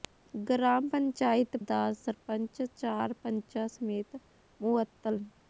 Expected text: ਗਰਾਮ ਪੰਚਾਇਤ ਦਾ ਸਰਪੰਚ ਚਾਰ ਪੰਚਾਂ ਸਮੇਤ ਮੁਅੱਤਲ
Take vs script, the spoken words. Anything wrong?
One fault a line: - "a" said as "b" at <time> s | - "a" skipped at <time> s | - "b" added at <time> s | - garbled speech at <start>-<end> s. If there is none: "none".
none